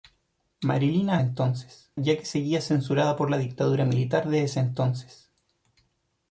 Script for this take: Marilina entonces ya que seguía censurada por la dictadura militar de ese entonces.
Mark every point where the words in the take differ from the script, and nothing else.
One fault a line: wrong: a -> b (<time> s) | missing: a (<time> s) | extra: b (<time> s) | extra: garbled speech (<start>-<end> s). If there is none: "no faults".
no faults